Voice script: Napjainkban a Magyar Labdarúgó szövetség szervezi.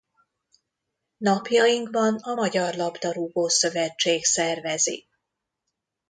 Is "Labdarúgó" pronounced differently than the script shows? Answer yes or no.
no